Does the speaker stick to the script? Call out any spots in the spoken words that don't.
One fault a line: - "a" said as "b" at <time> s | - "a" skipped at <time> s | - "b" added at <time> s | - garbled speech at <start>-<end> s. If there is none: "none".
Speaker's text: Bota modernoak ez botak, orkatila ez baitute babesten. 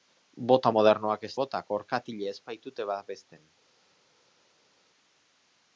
none